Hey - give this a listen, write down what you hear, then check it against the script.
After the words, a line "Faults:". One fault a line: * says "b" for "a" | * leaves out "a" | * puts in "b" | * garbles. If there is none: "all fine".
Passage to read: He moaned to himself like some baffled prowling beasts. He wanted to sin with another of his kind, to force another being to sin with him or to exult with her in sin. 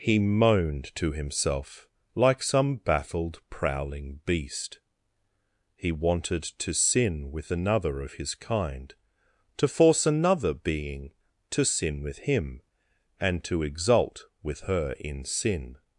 He moaned to himself like some baffled prowling beast. He wanted to sin with another of his kind, to force another being to sin with him and to exult with her in sin.
Faults:
* says "beast" for "beasts"
* says "and" for "or"